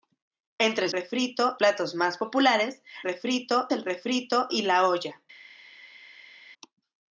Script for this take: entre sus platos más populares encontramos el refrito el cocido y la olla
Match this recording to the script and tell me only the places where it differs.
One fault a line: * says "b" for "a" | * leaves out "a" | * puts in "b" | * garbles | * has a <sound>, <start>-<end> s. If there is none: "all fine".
* says "refrito" for "sus"
* says "refrito" for "encontramos"
* leaves out "el cocido"